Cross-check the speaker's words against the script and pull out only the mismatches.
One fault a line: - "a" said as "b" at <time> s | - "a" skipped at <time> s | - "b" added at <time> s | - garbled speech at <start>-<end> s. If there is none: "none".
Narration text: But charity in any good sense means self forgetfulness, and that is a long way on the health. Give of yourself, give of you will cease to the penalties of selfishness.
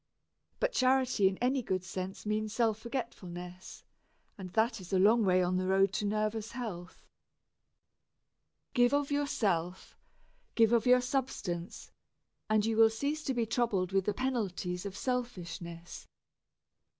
- "road to nervous" added at 5.7 s
- "your substance and" added at 10.9 s
- "be troubled with" added at 13.3 s